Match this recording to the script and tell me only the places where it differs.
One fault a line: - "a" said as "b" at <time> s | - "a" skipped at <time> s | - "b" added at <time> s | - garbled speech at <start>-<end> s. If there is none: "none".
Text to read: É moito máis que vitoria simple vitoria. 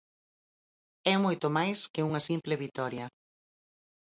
- "vitoria" said as "unha" at 2.1 s